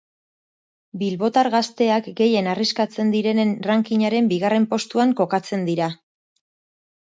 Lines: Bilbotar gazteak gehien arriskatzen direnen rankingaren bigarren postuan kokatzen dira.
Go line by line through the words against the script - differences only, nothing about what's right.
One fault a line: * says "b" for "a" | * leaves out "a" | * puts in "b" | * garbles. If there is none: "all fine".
all fine